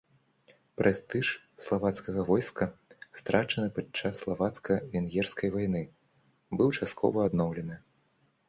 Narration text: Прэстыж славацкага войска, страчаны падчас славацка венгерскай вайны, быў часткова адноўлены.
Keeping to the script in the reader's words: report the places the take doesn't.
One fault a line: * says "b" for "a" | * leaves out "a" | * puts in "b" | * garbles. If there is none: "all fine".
all fine